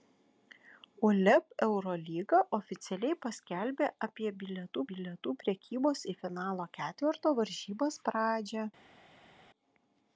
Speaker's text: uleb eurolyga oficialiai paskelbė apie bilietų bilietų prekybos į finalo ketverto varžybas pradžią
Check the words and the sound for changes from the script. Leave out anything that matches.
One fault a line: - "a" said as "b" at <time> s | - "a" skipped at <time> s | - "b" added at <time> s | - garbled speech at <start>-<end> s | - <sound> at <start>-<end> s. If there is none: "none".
none